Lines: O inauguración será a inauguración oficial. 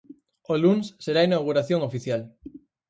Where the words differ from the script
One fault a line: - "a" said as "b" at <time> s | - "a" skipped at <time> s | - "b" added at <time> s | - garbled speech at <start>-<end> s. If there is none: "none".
- "inauguración" said as "luns" at 0.6 s